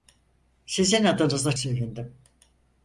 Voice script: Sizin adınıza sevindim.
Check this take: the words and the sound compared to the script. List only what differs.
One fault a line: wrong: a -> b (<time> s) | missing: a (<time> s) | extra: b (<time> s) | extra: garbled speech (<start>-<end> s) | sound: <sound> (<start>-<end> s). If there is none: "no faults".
no faults